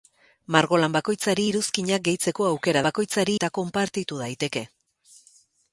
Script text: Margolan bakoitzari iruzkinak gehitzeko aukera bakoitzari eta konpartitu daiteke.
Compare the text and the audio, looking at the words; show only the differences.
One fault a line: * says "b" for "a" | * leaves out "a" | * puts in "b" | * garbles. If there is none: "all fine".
all fine